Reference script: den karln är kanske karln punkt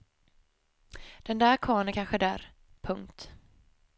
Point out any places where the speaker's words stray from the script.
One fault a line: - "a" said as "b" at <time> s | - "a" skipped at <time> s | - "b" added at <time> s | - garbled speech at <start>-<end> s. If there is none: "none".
- "där" added at 1.4 s
- "karln" said as "där" at 2.2 s